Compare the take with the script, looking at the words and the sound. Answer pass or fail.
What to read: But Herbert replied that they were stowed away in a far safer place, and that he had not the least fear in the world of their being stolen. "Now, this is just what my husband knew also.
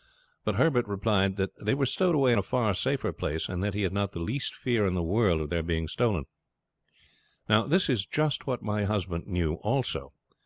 pass